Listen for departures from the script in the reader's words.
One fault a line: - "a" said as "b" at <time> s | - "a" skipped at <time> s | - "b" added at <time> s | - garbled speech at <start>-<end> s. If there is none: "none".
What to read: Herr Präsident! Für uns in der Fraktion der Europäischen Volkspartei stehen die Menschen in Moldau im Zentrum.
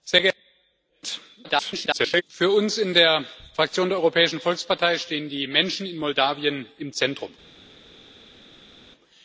- garbled speech at 1.4-2.2 s